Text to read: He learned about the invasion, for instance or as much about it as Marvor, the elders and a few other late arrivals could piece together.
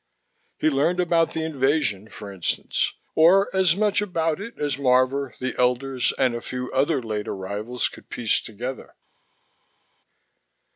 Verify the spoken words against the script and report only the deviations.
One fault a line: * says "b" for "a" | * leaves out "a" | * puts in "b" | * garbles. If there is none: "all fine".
all fine